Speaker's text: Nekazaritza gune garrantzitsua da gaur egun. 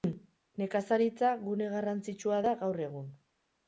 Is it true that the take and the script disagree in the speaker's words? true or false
false